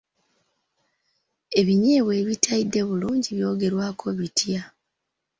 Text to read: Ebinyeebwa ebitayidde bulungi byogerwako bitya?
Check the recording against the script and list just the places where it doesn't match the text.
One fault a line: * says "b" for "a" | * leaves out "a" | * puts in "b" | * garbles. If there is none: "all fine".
all fine